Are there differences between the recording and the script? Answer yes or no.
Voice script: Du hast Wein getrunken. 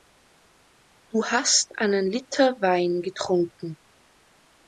yes